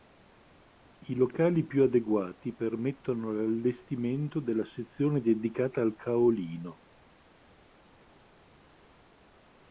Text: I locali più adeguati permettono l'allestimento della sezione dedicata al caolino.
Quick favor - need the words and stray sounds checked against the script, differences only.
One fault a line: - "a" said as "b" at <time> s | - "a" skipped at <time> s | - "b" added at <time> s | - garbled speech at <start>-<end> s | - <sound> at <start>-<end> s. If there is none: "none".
none